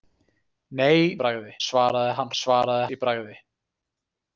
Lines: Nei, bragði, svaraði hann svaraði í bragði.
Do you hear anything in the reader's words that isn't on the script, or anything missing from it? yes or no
no